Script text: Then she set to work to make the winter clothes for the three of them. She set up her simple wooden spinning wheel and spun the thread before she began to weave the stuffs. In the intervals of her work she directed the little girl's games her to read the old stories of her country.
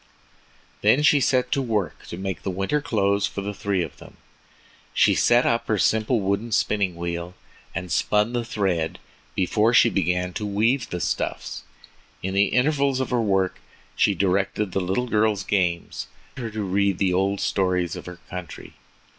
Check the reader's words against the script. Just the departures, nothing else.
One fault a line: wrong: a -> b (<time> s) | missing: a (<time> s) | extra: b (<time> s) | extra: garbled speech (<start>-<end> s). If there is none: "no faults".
no faults